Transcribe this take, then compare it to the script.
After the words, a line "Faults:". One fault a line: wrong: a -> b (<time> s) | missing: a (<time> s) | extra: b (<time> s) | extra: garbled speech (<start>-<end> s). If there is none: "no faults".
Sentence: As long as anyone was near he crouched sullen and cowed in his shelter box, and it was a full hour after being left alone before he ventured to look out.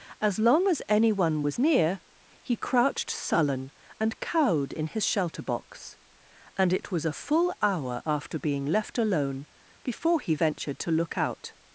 As long as anyone was near he crouched sullen and cowed in his shelter box, and it was a full hour after being left alone before he ventured to look out.
Faults:
no faults